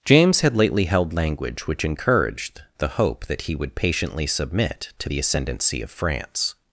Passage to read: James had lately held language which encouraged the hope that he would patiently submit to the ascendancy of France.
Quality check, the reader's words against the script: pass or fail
pass